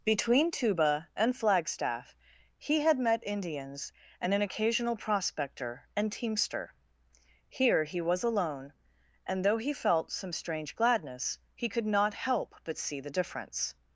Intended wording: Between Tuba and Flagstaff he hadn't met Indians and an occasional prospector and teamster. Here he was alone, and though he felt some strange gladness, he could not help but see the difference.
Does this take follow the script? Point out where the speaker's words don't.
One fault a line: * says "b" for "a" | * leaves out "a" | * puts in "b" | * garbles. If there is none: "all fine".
* says "had" for "hadn't"